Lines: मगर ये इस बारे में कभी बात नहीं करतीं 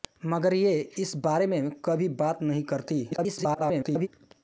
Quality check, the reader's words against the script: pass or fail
fail